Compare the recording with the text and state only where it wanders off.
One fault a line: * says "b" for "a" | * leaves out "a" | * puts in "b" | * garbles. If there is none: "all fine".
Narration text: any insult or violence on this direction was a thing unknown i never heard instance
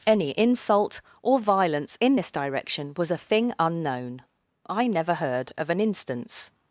* says "in" for "on"
* puts in "of an"